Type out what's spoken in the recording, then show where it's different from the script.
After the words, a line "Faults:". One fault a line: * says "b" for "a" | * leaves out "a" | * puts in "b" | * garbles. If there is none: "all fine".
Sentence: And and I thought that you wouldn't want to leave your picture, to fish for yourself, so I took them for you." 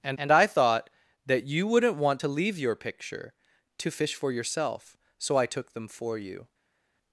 And and I thought that you wouldn't want to leave your picture, to fish for yourself, so I took them for you."
Faults:
all fine